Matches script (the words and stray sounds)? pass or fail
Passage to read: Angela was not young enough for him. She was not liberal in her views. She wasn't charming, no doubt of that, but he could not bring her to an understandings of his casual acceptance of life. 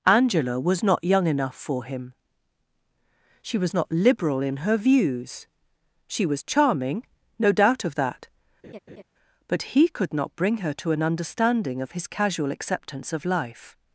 fail